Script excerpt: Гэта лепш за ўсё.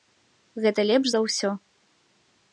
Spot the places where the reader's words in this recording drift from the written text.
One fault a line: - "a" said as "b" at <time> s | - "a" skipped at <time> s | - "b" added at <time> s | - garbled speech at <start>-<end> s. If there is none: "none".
none